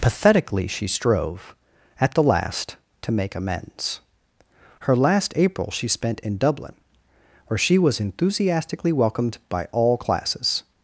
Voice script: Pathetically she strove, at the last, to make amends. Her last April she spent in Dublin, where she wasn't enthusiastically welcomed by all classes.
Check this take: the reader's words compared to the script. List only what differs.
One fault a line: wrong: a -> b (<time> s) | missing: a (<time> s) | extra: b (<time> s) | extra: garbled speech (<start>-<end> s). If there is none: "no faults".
wrong: wasn't -> was (7.8 s)